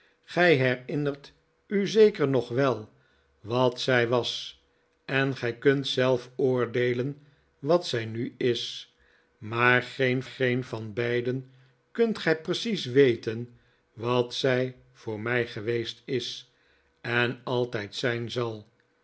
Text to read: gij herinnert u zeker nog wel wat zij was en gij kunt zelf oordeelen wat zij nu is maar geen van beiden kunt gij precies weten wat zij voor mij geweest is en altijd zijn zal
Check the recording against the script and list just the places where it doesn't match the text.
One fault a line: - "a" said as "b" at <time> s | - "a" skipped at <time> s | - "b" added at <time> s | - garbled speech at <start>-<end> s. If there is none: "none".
- "geen" added at 10.2 s